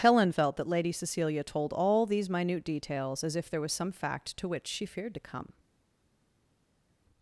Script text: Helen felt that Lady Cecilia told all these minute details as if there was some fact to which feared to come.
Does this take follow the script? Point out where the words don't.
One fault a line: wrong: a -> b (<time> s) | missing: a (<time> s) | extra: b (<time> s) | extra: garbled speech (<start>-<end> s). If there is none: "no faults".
extra: she (4.7 s)